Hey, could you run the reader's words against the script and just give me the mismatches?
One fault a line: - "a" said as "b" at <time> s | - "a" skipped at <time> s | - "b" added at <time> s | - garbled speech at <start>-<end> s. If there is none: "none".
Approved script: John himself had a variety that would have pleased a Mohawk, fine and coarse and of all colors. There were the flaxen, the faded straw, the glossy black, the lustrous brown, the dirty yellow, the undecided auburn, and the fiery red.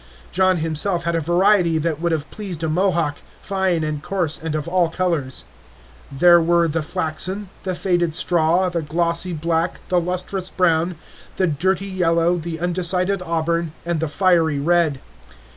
none